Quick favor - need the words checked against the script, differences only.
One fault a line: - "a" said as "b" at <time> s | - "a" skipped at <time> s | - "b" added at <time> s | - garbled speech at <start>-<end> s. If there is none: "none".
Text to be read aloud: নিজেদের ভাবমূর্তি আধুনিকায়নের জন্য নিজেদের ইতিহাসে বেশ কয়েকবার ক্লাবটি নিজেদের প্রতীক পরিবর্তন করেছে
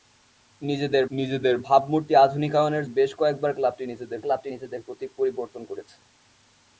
- "নিজেদের" added at 1.1 s
- "জন্য নিজেদের ইতিহাসে বেশ কয়েকবার" said as "বেশ কয়েকবার ক্লাবটি নিজেদের" at 2.9 s